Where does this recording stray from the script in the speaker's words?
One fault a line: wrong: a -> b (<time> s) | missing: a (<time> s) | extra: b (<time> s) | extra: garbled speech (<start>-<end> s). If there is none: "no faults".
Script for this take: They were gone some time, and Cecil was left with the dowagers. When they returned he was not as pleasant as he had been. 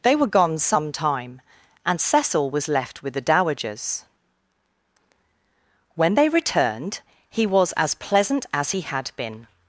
missing: not (7.7 s)